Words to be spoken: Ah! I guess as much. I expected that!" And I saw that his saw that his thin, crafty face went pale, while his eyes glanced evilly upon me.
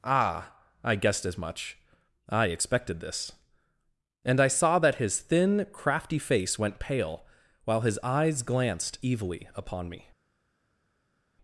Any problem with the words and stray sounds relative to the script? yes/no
yes